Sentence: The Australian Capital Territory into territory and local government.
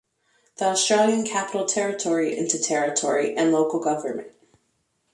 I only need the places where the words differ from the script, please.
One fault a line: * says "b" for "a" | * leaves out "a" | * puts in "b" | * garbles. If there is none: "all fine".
all fine